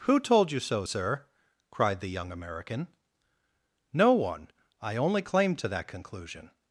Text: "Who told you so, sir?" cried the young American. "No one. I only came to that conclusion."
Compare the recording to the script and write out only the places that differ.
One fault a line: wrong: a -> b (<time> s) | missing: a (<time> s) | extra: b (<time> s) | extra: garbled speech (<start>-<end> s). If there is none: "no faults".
wrong: came -> claim (5.2 s)